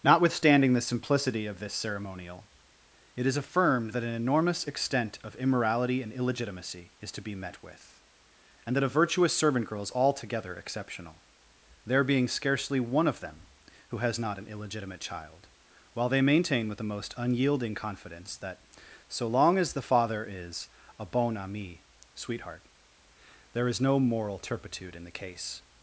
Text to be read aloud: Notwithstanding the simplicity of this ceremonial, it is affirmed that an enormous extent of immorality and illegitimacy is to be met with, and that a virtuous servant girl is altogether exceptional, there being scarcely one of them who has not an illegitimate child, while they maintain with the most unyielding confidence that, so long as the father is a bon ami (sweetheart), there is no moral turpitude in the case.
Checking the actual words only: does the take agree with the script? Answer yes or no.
yes